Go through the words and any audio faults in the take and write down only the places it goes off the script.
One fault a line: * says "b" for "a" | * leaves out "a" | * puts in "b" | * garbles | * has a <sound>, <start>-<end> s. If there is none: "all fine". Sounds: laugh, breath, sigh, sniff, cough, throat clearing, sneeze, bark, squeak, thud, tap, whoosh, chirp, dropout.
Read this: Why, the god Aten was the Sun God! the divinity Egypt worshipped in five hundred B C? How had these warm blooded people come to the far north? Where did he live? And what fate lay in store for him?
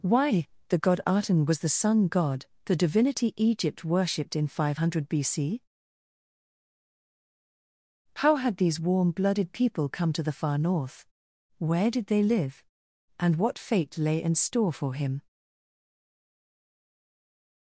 * says "they" for "he"